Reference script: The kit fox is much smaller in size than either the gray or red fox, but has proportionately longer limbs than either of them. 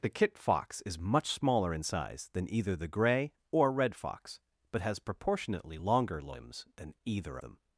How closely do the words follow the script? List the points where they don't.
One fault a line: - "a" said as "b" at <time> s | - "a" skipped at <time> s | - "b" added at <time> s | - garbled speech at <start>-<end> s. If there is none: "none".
- "of" skipped at 7.4 s